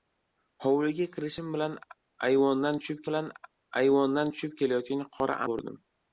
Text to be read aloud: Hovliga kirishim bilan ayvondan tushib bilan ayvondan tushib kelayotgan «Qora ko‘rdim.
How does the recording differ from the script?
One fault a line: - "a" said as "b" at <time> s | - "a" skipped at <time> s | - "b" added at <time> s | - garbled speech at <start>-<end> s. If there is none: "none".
none